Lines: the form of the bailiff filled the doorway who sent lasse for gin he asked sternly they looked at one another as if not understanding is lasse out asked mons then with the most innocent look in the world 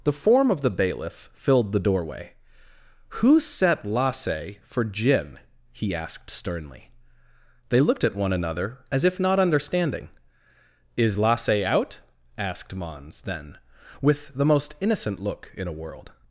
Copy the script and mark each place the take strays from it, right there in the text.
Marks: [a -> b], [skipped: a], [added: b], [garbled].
the form of the bailiff filled the doorway who [sent -> set] lasse for gin he asked sternly they looked at one another as if not understanding is lasse out asked mons then with the most innocent look in [the -> a] world